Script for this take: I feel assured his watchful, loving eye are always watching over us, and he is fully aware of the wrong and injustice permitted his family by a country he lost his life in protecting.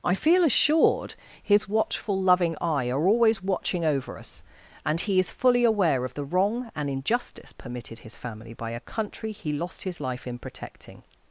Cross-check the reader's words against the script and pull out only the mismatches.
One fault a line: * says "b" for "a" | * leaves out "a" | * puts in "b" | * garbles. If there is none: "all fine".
all fine